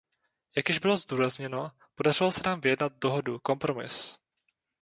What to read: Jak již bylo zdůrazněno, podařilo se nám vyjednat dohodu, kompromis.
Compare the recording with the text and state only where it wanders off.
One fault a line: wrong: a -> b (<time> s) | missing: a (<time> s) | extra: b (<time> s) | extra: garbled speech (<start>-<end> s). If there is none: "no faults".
no faults